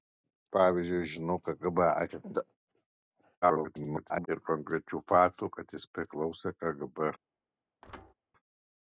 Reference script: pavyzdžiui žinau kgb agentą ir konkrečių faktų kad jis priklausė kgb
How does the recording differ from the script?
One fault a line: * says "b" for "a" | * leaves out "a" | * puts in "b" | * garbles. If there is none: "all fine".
* garbles